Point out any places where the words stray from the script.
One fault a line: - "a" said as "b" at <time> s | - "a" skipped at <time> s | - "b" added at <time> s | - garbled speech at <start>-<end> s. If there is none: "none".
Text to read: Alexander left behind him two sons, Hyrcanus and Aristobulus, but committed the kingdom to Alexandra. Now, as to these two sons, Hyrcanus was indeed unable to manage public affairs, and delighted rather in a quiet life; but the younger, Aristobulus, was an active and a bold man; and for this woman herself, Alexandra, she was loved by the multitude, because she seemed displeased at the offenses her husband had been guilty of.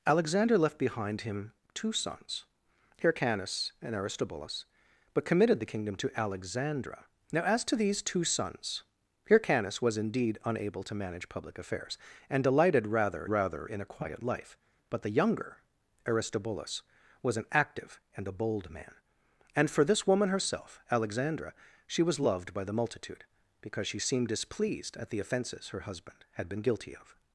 - "rather" added at 13.2 s